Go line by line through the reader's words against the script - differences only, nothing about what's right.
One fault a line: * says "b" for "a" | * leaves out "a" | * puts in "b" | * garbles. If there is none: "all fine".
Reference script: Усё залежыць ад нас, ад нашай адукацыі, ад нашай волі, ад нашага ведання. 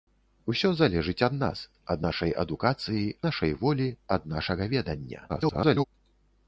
* leaves out "ад"
* garbles